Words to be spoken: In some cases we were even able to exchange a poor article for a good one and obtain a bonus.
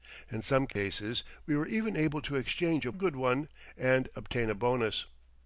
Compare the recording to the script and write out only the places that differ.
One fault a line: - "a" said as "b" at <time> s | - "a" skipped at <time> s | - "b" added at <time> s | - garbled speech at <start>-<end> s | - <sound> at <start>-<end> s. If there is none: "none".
- dropout at 0.7-0.8 s
- "poor article for" skipped at 2.9 s